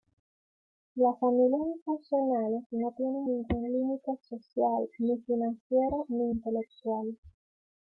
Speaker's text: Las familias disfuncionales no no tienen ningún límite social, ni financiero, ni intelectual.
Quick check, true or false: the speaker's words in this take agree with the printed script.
false